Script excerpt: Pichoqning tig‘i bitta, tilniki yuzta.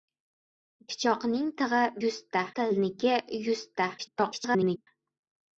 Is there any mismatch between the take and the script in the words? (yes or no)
yes